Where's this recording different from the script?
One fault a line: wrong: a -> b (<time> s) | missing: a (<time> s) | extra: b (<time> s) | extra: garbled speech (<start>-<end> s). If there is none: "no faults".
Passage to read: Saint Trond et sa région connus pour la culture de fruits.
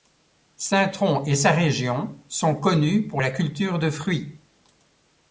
extra: sont (2.3 s)